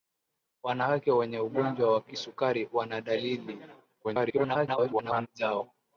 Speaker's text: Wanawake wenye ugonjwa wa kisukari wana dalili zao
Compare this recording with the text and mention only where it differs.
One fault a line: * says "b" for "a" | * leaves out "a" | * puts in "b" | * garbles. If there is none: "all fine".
* garbles